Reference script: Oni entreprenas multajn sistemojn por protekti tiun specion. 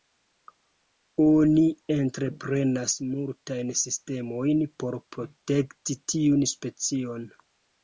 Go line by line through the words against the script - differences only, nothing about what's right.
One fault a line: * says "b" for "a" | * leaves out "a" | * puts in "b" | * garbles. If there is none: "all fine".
all fine